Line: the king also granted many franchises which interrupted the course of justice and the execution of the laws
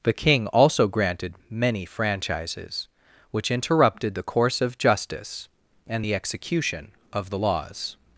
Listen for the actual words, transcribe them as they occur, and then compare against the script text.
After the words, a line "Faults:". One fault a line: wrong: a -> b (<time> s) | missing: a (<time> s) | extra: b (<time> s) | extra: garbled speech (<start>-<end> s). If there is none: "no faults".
the king also granted many franchises which interrupted the course of justice and the execution of the laws
Faults:
no faults